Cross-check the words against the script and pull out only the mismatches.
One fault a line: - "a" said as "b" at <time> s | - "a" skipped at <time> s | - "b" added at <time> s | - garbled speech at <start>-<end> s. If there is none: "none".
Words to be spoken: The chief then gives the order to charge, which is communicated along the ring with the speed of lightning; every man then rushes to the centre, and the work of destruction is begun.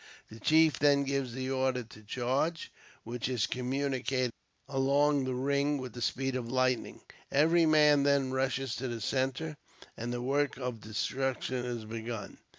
none